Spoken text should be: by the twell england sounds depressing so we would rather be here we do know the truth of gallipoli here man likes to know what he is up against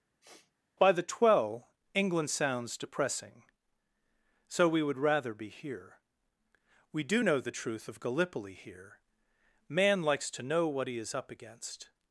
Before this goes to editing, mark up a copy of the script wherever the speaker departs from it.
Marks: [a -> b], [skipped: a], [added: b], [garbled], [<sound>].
[sniff] by the twell england sounds depressing so we would rather be here we do know the truth of gallipoli here man likes to know what he is up against